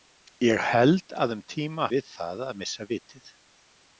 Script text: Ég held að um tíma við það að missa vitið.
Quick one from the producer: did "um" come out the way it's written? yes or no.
yes